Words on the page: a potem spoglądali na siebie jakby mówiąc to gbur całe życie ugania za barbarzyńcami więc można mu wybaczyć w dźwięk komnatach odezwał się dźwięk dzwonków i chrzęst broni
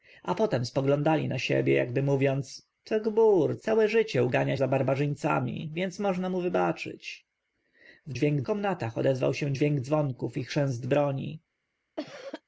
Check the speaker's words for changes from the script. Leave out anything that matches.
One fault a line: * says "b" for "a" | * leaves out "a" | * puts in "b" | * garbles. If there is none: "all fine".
all fine